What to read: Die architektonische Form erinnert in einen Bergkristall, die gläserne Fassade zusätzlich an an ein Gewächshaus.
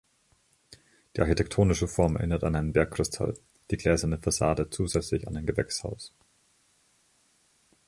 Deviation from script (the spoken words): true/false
true